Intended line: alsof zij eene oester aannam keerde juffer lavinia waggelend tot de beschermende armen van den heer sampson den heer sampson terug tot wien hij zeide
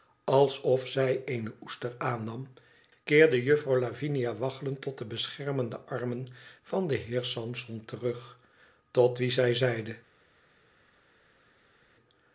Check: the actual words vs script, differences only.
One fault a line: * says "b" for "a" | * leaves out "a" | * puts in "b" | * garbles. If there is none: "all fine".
* leaves out "den heer sampson"
* says "zij" for "hij"